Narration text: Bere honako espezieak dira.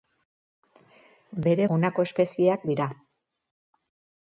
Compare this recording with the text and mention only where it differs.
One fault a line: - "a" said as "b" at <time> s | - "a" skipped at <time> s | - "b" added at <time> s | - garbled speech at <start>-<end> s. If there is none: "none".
none